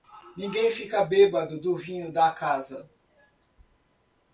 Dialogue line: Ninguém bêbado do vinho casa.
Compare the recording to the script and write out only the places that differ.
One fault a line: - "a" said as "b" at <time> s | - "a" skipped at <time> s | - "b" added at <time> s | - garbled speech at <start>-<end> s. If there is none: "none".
- "fica" added at 0.7 s
- "da" added at 2.1 s